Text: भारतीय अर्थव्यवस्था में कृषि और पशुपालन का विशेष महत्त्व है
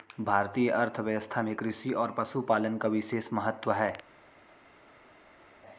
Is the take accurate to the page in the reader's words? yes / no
yes